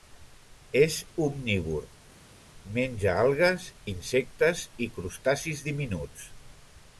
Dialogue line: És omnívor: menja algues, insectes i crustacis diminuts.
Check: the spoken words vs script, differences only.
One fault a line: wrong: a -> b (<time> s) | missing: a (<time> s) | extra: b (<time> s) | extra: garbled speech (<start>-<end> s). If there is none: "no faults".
no faults